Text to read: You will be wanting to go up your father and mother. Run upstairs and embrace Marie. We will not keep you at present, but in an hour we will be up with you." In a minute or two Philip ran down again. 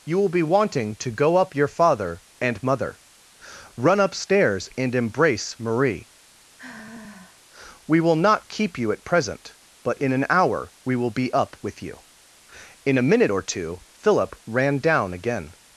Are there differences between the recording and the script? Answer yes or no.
no